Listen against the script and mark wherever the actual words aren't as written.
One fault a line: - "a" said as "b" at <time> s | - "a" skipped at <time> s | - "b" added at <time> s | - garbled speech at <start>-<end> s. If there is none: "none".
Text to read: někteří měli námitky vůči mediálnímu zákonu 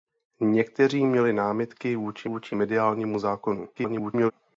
- "vůči" added at 2.2 s
- garbled speech at 3.8-4.3 s